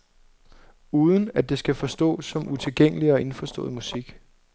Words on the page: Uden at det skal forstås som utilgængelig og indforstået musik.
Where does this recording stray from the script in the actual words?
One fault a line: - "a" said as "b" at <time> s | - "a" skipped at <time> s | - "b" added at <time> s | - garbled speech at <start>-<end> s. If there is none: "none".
none